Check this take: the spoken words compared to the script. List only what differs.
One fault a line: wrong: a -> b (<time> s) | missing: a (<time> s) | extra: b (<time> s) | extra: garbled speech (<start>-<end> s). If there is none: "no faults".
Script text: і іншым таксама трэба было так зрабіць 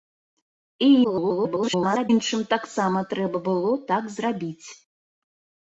extra: garbled speech (1.0-2.1 s)